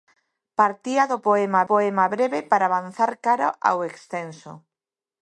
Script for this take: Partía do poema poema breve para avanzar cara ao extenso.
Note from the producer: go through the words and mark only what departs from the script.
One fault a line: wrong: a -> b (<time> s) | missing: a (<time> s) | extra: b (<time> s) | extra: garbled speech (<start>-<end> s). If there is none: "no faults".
no faults